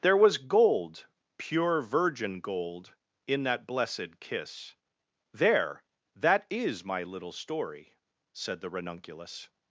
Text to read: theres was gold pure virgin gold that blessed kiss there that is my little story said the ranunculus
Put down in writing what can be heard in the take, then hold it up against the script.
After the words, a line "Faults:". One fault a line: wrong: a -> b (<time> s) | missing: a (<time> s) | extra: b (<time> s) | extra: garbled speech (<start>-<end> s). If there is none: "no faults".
there was gold pure virgin gold in that blessed kiss there that is my little story said the ranunculus
Faults:
wrong: theres -> there (0.0 s)
extra: in (3.3 s)